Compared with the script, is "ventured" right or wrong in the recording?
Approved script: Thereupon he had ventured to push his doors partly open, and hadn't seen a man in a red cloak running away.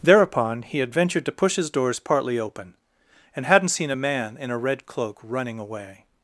right